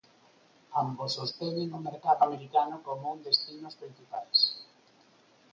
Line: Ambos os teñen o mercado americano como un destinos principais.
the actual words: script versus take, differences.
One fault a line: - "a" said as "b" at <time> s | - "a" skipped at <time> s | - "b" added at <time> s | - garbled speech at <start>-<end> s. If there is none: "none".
none